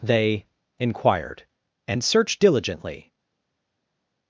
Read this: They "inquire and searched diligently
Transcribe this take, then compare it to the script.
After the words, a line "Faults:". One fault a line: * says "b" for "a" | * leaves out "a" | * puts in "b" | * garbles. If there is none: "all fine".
They "inquired and searched diligently
Faults:
* says "inquired" for "inquire"